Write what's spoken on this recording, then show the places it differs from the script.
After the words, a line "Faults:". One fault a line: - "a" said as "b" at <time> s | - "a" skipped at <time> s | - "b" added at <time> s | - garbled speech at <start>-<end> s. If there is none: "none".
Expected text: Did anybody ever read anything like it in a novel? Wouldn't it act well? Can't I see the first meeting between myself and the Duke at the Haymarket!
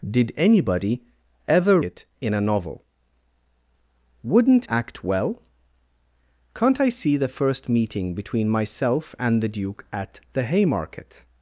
Did anybody ever it in a novel? Wouldn't act well? Can't I see the first meeting between myself and the Duke at the Haymarket!
Faults:
- "read anything like" skipped at 1.8 s
- "it" skipped at 4.7 s